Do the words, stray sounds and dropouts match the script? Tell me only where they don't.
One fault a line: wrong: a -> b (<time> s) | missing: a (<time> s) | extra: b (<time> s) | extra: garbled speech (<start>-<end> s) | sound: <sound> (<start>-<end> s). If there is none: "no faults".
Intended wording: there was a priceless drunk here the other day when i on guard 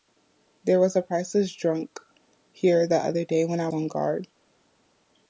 no faults